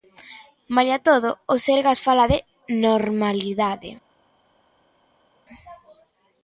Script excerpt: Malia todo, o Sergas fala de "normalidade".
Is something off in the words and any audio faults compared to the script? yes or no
no